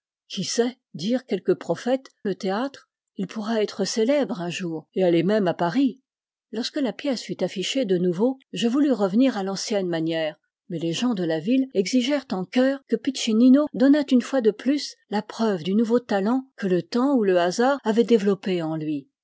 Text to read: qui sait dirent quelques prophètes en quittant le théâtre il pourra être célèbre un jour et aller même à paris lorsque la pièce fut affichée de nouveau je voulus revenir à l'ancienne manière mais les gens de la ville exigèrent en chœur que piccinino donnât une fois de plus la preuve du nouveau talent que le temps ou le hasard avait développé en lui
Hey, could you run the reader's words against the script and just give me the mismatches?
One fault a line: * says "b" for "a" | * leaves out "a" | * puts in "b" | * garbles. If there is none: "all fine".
* leaves out "en quittant"